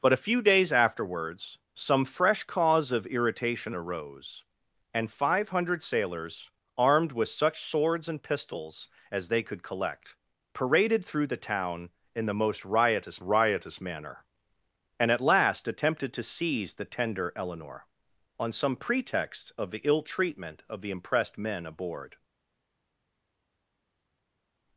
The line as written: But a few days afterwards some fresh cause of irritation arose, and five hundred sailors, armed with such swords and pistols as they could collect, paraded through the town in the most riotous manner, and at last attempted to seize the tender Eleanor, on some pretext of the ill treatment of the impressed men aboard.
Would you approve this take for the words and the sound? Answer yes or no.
no